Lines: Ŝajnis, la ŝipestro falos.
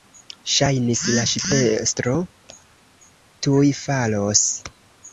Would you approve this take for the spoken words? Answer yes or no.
no